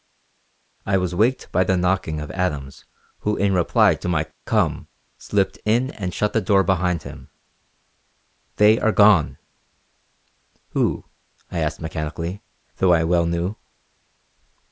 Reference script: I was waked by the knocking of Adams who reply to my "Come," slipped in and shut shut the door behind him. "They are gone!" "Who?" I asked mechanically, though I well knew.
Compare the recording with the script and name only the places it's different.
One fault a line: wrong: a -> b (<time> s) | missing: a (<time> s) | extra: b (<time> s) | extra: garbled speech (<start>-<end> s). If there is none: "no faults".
extra: in (3.4 s)
missing: shut (6.3 s)